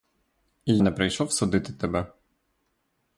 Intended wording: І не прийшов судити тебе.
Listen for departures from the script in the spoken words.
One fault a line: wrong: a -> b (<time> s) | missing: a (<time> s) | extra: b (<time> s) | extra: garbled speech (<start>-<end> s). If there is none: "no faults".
no faults